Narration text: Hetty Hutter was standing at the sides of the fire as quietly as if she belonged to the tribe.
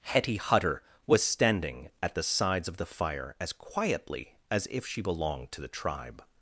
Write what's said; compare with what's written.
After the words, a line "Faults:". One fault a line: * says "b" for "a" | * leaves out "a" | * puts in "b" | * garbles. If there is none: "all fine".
Hetty Hutter was standing at the sides of the fire as quietly as if she belonged to the tribe.
Faults:
all fine